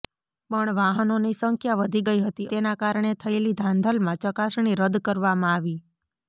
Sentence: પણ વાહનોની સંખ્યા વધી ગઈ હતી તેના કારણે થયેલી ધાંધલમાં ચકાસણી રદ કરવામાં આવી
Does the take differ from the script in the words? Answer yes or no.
no